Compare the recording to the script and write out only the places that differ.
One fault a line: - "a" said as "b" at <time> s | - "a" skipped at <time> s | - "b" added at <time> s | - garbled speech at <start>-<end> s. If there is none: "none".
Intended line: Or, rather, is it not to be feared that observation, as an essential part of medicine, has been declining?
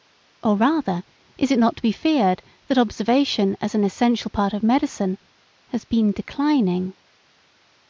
none